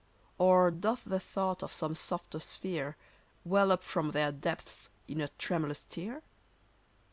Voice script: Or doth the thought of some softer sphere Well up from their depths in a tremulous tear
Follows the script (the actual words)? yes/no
yes